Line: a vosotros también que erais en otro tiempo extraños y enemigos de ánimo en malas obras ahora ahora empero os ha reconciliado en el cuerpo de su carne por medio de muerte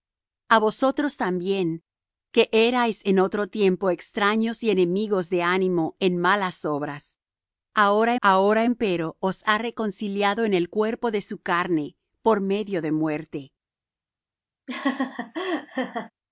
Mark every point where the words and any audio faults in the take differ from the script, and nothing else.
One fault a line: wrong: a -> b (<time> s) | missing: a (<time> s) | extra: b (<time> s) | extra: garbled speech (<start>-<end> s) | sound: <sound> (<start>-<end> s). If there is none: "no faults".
sound: laugh (14.7-16.1 s)